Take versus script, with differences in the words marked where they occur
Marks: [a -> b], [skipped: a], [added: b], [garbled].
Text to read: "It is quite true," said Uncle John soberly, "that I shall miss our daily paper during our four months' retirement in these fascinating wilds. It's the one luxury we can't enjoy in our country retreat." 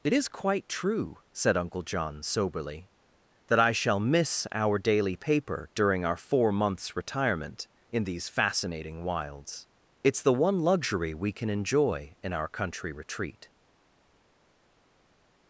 "It is quite true," said Uncle John soberly, "that I shall miss our daily paper during our four months' retirement in these fascinating wilds. It's the one luxury we [can't -> can] enjoy in our country retreat."